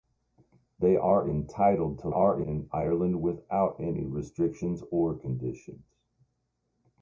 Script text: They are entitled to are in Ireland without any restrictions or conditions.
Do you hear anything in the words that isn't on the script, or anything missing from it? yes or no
no